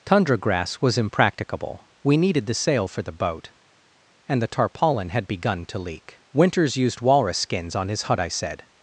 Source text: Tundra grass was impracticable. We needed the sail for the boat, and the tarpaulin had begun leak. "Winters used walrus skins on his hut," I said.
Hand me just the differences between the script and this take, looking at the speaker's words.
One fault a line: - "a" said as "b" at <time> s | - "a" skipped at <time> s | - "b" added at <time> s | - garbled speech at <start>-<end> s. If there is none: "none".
- "to" added at 5.7 s